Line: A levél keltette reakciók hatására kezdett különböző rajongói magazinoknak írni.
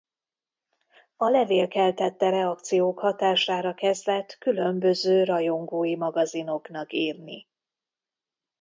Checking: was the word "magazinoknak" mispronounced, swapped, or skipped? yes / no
no